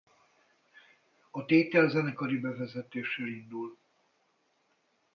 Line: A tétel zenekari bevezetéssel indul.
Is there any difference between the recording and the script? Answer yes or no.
no